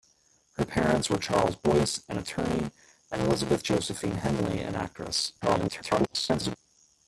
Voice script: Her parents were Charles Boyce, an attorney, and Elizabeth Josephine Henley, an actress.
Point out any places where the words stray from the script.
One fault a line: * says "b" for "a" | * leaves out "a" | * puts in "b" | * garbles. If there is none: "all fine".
* garbles